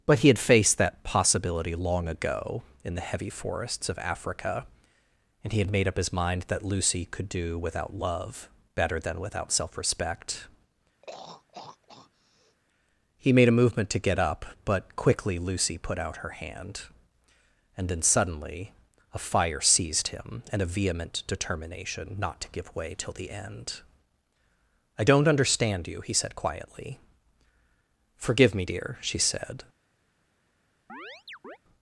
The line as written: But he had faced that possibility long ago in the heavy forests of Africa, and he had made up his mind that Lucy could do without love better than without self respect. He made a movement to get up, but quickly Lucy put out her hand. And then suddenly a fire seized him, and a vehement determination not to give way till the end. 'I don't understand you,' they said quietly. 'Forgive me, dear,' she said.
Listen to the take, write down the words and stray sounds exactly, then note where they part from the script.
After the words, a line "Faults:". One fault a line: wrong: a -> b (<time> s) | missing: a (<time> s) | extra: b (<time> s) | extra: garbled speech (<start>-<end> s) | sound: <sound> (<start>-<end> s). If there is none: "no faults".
But he had faced that possibility long ago in the heavy forests of Africa, and he had made up his mind that Lucy could do without love better than without self respect. He made a movement to get up, but quickly Lucy put out her hand. And then suddenly a fire seized him, and a vehement determination not to give way till the end. 'I don't understand you,' he said quietly. 'Forgive me, dear,' she said.
Faults:
sound: throat clearing (11.0-12.6 s)
wrong: they -> he (26.0 s)
sound: chirp (30.9-31.6 s)